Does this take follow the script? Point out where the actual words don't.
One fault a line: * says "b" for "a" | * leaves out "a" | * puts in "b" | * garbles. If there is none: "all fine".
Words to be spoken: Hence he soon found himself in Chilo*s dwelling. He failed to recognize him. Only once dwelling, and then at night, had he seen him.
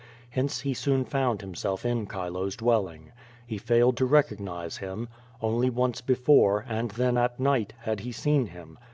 * says "before" for "dwelling"